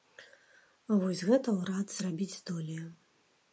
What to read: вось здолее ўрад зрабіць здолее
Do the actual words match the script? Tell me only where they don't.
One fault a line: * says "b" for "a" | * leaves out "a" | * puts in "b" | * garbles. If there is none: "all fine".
* says "гэта" for "здолее"